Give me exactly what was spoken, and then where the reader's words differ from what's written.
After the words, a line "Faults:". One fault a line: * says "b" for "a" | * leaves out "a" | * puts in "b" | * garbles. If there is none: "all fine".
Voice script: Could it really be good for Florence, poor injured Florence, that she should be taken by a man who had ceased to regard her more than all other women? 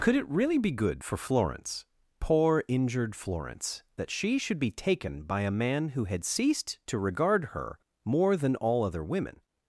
Could it really be good for Florence, poor injured Florence, that she should be taken by a man who had ceased to regard her more than all other women?
Faults:
all fine